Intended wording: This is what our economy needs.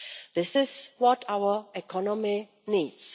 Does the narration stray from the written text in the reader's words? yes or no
no